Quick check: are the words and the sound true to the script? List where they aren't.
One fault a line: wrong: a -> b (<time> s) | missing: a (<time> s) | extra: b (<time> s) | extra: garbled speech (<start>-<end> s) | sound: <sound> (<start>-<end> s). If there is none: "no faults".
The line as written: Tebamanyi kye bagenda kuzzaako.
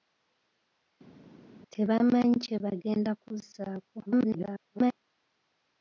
extra: garbled speech (4.1-4.9 s)